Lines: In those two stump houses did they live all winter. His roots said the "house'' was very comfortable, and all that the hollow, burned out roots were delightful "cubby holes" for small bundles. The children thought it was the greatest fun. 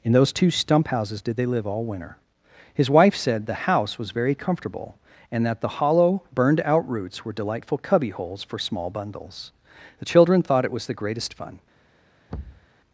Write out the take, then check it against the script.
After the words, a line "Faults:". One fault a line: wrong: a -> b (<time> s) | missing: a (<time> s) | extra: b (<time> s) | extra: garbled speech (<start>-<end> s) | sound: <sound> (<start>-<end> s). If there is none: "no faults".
In those two stump houses did they live all winter. His wife said the "house'' was very comfortable, and that the hollow, burned out roots were delightful "cubby holes" for small bundles. The children thought it was the greatest fun.
Faults:
wrong: roots -> wife (2.9 s)
missing: all (5.5 s)
sound: thud (12.3-12.7 s)